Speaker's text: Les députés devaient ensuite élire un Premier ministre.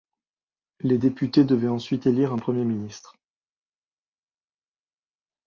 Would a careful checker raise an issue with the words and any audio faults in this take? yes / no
no